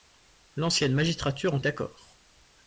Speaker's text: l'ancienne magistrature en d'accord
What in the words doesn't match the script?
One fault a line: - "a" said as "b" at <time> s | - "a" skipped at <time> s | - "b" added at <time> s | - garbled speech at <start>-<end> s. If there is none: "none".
none